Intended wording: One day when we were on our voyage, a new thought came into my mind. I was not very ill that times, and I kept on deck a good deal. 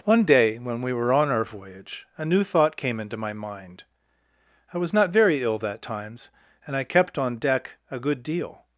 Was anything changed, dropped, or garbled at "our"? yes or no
no